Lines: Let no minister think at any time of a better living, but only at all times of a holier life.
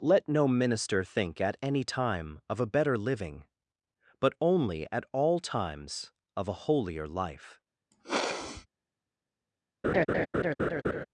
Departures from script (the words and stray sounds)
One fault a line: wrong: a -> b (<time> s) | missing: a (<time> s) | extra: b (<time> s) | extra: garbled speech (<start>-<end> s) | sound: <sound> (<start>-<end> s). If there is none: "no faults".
sound: sniff (7.9-8.7 s)
sound: laugh (9.8-11.1 s)